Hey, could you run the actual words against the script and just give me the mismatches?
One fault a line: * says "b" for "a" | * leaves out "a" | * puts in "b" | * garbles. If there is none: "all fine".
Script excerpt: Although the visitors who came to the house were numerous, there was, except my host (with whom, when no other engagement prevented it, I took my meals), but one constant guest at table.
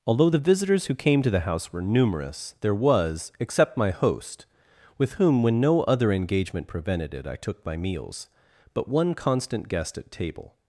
all fine